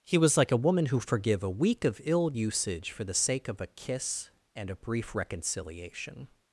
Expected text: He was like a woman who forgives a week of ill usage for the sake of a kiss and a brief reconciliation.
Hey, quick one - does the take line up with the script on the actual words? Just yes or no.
no